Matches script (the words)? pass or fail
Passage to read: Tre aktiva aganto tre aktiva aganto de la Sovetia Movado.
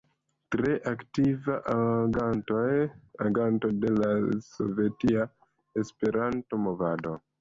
fail